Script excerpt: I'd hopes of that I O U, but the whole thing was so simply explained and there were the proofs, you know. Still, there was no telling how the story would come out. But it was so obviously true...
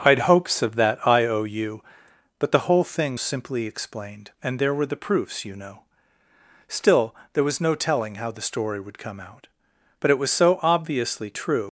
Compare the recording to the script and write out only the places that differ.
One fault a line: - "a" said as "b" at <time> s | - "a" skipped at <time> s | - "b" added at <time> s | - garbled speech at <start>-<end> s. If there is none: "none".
- "was so" skipped at 3.2 s